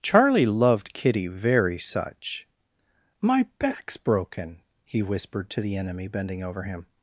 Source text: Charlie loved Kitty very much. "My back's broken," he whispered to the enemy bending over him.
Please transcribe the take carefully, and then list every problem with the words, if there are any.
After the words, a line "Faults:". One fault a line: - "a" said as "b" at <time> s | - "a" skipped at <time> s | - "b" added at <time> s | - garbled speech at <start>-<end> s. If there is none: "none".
Charlie loved Kitty very such. "My back's broken," he whispered to the enemy bending over him.
Faults:
- "much" said as "such" at 1.8 s